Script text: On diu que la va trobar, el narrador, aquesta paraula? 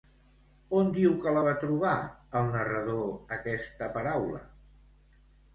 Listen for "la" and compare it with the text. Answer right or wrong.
right